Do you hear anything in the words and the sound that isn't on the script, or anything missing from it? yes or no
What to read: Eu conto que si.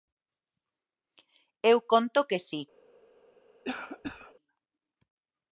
yes